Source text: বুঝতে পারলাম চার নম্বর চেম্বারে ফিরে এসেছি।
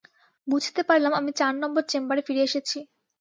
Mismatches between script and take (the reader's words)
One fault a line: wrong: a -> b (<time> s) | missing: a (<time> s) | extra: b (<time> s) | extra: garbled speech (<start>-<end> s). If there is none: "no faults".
extra: আমি (1.1 s)